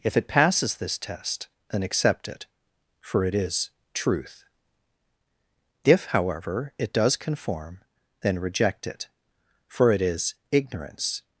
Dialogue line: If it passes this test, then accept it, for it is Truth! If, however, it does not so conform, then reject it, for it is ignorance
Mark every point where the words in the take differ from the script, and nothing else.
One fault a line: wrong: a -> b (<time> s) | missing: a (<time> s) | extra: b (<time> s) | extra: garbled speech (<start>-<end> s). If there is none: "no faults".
missing: not so (7.2 s)